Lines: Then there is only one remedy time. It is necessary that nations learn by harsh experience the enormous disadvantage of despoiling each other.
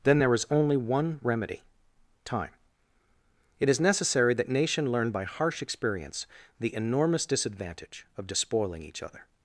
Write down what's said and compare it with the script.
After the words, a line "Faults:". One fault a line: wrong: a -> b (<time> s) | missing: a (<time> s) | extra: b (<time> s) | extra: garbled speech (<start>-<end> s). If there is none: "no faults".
Then there is only one remedy time. It is necessary that nation learn by harsh experience the enormous disadvantage of despoiling each other.
Faults:
wrong: nations -> nation (4.5 s)